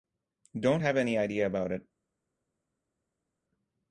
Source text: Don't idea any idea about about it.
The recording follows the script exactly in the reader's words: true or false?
false